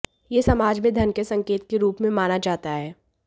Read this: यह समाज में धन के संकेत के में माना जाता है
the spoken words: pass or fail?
fail